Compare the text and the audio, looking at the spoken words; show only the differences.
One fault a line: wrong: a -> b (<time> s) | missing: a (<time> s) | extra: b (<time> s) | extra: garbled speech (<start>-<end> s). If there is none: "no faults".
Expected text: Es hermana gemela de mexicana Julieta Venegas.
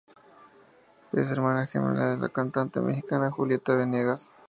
extra: la cantante (2.2 s)